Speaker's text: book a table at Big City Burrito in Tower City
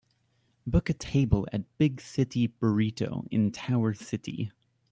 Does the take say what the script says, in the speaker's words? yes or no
yes